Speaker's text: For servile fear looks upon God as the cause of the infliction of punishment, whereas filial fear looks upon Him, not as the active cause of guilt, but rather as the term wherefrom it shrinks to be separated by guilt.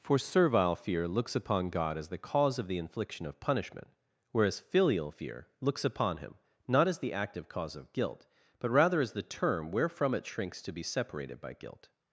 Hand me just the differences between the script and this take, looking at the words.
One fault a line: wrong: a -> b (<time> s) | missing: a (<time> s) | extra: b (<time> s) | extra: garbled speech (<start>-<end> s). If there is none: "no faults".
no faults